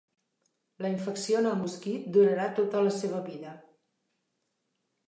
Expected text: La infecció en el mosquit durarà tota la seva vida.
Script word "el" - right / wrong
right